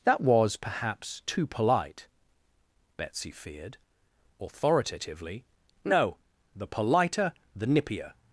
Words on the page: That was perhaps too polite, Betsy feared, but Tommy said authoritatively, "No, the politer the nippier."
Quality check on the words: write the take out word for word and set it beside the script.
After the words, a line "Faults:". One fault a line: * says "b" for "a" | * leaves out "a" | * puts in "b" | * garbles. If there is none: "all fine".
That was perhaps too polite, Betsy feared, authoritatively, "No, the politer the nippier."
Faults:
* leaves out "but Tommy said"